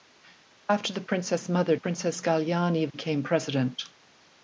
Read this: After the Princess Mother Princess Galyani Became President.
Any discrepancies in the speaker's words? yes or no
no